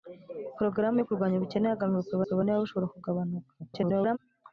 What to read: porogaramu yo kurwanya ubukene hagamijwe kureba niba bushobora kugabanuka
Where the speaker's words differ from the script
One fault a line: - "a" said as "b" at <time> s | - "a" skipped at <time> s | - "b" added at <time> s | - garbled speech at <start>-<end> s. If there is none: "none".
- "kureba" added at 2.2 s
- garbled speech at 3.6-4.2 s